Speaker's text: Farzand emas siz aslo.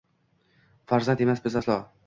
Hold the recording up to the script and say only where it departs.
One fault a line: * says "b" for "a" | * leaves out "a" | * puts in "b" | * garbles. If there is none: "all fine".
* says "biz" for "siz"